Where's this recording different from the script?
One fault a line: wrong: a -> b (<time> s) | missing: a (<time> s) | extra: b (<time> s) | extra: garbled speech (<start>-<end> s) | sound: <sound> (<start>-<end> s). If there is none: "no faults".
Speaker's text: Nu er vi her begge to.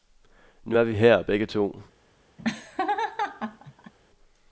sound: laugh (2.4-3.9 s)